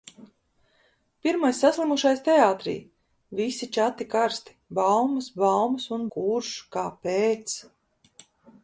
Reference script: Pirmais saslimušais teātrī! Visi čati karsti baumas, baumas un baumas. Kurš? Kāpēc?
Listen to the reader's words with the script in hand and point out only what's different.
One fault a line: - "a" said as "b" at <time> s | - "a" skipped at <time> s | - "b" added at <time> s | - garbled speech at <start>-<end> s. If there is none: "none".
- "baumas" skipped at 6.1 s